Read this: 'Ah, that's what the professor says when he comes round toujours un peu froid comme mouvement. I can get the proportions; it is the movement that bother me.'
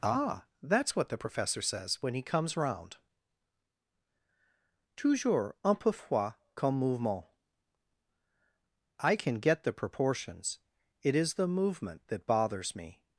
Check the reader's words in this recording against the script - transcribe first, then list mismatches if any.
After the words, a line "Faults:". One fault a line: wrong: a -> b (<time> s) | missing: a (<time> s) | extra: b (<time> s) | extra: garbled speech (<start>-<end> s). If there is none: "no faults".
'Ah, that's what the professor says when he comes round toujours un peu froid comme mouvement. I can get the proportions; it is the movement that bothers me.'
Faults:
wrong: bother -> bothers (12.3 s)